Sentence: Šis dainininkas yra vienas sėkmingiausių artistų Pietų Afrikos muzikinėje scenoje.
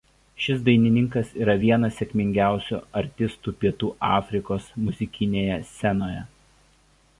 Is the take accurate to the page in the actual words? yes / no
yes